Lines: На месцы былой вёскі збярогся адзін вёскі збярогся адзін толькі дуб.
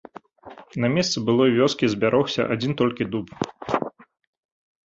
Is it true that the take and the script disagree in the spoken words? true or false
true